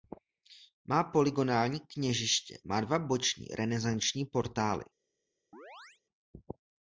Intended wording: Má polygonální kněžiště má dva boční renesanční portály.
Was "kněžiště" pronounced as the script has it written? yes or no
yes